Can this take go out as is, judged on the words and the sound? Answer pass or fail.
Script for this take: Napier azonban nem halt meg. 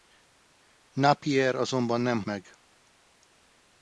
fail